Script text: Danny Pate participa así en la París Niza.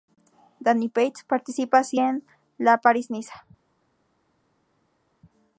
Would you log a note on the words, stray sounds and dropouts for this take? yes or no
no